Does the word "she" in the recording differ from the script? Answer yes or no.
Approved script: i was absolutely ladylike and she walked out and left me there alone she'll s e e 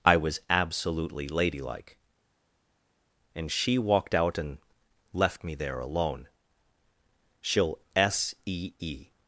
no